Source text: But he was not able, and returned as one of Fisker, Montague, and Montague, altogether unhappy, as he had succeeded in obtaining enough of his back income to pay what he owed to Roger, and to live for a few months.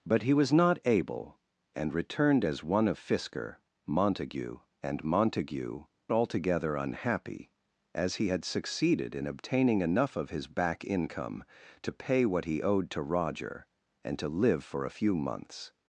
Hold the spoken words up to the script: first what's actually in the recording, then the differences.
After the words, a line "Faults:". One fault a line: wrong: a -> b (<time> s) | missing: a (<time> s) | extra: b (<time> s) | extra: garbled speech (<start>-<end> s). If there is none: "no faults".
But he was not able, and returned as one of Fisker, Montague, and Montague, altogether unhappy, as he had succeeded in obtaining enough of his back income to pay what he owed to Roger, and to live for a few months.
Faults:
no faults